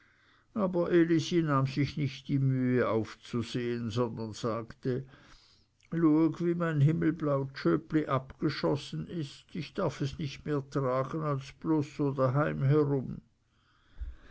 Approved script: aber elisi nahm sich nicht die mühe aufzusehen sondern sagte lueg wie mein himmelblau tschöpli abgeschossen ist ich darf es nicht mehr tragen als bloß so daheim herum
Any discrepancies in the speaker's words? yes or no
no